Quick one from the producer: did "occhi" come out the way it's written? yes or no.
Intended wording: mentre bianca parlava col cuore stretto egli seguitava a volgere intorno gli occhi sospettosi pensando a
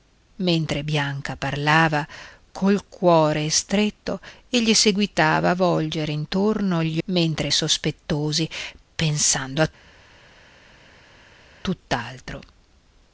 no